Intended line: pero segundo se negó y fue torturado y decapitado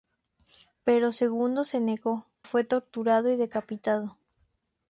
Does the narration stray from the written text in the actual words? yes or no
yes